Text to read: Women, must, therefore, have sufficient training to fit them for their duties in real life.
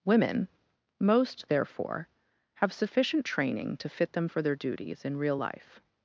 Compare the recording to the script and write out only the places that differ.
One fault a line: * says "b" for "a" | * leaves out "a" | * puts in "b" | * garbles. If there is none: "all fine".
* says "most" for "must"